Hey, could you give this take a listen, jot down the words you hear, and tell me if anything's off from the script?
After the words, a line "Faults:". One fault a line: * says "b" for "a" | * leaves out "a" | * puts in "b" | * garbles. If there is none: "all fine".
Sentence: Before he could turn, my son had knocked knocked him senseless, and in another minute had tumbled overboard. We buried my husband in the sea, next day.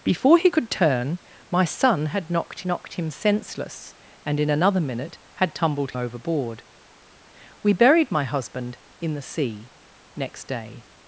Before he could turn, my son had knocked knocked him senseless, and in another minute had tumbled overboard. We buried my husband in the sea, next day.
Faults:
all fine